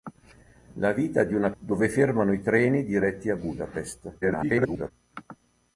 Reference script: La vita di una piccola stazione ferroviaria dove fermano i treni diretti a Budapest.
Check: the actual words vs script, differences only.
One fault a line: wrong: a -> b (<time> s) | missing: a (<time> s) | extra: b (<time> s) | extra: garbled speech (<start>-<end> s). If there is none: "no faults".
missing: piccola stazione ferroviaria (1.5 s)
extra: garbled speech (4.2-4.9 s)